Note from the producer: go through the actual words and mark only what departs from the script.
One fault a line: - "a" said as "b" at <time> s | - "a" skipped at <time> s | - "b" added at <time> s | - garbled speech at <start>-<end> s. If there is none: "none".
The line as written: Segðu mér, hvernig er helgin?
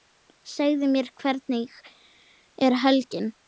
none